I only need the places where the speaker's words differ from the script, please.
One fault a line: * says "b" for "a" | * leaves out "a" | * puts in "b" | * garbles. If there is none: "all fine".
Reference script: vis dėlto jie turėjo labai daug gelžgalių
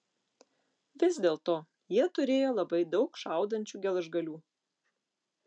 * puts in "šaudančių"